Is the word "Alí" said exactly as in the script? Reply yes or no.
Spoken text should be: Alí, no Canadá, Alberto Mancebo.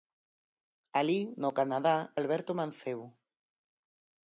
yes